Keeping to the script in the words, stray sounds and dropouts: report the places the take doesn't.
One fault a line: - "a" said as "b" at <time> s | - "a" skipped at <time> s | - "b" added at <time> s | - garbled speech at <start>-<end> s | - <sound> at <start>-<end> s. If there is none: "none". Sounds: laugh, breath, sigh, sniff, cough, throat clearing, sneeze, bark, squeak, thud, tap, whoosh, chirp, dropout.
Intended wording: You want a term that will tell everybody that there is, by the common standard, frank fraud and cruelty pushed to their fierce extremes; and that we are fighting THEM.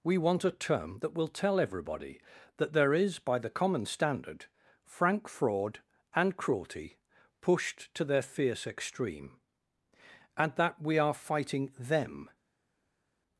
- "You" said as "We" at 0.0 s
- "extremes" said as "extreme" at 8.7 s